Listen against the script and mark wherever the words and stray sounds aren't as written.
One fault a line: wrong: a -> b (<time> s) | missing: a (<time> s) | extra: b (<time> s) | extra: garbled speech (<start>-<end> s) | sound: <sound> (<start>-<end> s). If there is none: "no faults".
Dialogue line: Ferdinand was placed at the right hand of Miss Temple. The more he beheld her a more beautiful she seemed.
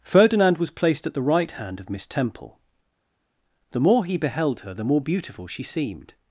wrong: a -> the (4.7 s)